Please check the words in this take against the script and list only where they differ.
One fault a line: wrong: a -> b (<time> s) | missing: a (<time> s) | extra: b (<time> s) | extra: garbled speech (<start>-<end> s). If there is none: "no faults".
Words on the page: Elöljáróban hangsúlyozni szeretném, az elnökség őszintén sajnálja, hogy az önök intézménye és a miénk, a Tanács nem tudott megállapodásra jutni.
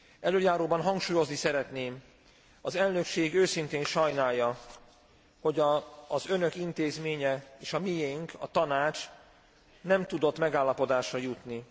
no faults